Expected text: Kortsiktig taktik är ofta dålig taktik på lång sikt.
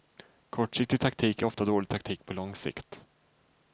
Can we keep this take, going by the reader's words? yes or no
yes